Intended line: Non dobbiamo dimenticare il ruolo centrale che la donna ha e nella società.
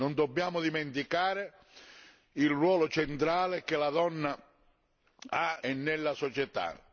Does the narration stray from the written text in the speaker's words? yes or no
no